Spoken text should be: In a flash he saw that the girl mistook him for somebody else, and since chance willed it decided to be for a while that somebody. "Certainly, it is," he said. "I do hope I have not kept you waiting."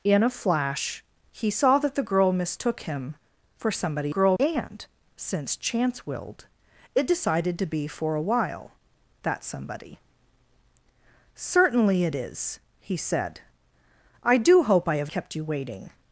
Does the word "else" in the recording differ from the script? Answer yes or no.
yes